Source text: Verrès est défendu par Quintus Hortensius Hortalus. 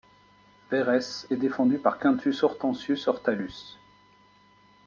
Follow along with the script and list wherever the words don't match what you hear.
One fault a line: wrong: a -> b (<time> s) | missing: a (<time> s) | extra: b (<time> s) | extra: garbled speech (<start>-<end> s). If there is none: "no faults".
no faults